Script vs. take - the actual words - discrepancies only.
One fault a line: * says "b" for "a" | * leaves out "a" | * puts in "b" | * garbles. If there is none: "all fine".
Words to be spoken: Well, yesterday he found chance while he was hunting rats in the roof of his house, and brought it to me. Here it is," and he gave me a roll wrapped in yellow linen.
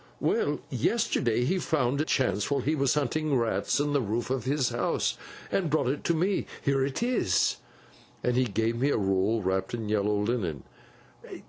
all fine